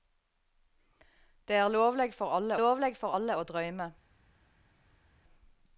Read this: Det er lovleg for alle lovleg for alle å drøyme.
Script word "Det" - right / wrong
right